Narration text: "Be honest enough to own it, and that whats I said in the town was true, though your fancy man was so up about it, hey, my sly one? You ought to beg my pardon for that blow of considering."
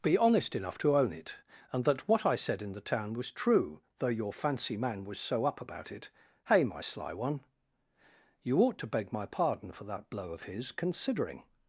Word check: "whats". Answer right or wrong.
wrong